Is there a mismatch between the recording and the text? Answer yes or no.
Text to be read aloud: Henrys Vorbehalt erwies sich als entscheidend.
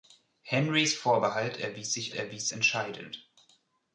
yes